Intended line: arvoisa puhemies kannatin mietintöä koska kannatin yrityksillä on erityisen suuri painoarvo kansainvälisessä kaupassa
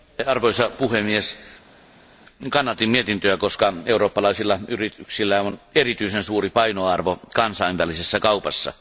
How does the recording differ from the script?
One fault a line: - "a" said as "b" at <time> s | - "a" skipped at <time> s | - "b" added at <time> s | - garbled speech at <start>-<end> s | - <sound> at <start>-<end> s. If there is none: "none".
- "kannatin" said as "eurooppalaisilla" at 3.9 s